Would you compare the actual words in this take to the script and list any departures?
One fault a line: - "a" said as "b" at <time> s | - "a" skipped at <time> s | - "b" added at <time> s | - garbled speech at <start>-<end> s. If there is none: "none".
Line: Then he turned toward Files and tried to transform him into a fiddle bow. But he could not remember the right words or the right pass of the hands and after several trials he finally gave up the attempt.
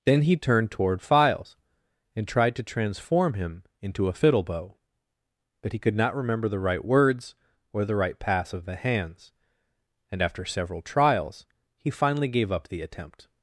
none